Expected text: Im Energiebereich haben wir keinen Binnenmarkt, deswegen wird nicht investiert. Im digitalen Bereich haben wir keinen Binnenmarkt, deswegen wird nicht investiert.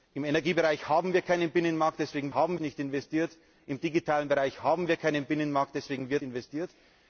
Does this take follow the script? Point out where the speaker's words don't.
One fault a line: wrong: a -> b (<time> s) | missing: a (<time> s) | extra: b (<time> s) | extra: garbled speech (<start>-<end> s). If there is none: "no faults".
wrong: wird -> haben (2.3 s)
missing: nicht (6.2 s)